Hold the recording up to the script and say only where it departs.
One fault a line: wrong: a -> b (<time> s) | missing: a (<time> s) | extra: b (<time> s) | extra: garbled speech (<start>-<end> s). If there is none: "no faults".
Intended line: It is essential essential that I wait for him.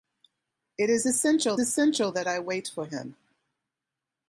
no faults